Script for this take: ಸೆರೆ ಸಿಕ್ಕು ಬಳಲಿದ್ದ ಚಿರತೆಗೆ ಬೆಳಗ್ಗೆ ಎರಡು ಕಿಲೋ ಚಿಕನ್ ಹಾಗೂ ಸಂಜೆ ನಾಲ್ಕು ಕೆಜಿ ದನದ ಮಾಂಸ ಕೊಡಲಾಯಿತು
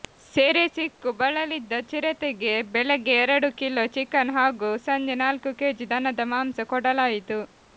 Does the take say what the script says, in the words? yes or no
yes